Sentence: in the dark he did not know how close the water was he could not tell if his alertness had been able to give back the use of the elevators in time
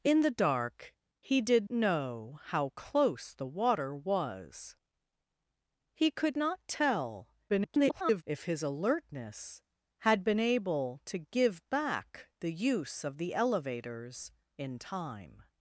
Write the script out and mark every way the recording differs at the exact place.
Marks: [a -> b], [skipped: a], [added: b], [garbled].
in the dark he did [skipped: not] know how close the water was he could not tell [garbled] if his alertness had been able to give back the use of the elevators in time